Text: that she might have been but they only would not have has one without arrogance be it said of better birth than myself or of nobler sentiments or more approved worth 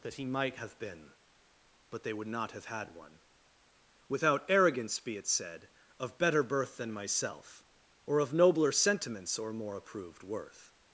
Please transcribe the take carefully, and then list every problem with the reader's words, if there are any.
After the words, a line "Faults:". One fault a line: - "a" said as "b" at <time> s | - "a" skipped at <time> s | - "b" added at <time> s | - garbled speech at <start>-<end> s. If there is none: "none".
that he might have been but they would not have had one without arrogance be it said of better birth than myself or of nobler sentiments or more approved worth
Faults:
- "she" said as "he" at 0.1 s
- "only" skipped at 2.1 s
- "has" said as "had" at 2.7 s